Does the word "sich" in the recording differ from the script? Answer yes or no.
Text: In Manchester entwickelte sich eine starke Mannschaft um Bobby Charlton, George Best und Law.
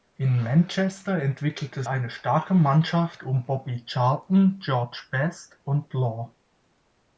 yes